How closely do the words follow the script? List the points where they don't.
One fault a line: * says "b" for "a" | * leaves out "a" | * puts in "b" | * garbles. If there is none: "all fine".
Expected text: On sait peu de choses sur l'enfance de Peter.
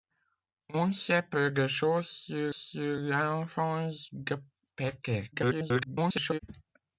* puts in "sur"
* garbles